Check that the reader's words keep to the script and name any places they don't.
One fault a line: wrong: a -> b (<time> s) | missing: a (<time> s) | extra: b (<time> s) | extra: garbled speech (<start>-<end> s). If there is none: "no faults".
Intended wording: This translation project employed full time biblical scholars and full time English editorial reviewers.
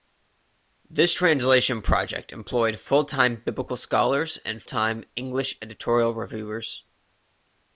missing: full (4.6 s)